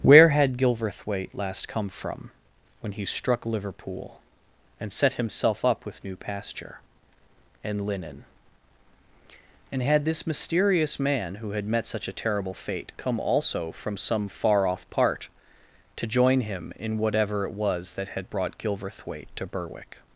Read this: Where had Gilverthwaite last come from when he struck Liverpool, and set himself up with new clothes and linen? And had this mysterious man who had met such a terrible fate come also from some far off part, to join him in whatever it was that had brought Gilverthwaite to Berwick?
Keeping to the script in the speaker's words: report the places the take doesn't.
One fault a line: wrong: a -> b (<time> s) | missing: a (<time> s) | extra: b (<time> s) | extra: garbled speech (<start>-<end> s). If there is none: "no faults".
wrong: clothes -> pasture (6.2 s)